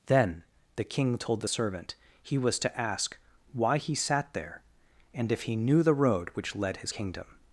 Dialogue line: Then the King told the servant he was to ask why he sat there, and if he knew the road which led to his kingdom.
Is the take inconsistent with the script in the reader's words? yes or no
yes